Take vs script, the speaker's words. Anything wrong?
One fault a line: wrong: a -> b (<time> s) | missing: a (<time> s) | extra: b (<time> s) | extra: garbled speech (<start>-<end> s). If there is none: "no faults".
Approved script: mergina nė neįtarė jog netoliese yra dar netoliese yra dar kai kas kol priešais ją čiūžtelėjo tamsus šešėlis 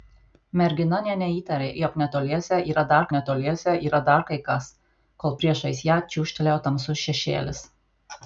no faults